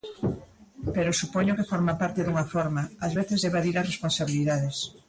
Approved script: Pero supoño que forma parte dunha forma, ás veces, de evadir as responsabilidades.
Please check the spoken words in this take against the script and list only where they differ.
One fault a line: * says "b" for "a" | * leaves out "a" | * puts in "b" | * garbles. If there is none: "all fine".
all fine